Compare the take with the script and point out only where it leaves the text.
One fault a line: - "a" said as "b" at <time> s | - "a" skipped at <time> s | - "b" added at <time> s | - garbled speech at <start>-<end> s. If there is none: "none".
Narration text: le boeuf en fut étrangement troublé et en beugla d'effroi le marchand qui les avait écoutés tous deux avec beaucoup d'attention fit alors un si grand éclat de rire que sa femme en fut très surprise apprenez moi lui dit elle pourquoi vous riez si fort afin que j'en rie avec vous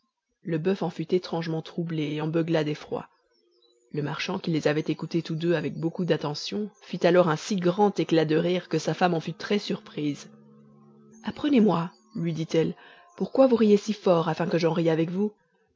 none